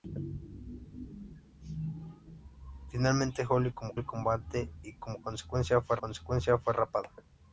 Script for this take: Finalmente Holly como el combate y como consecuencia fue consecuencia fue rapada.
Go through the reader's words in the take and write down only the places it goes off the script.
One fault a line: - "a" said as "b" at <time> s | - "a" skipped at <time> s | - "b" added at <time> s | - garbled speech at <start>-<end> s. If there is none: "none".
none